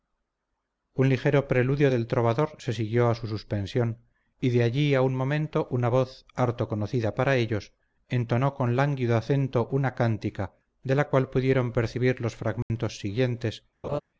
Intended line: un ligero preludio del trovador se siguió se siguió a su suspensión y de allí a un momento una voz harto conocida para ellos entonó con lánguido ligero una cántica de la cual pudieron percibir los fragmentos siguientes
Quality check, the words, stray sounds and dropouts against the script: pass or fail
fail